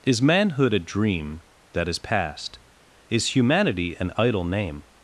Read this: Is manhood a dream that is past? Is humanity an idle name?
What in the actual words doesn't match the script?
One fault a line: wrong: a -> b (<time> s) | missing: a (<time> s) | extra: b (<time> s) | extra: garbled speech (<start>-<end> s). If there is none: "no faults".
no faults